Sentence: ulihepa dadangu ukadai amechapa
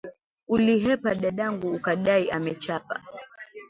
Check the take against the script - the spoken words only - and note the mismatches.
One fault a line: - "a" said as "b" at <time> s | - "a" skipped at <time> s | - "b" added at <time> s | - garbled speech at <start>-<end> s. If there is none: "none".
none